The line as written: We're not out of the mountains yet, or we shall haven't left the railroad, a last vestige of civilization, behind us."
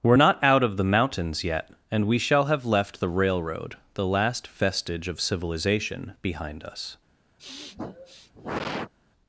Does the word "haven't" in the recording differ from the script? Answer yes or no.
yes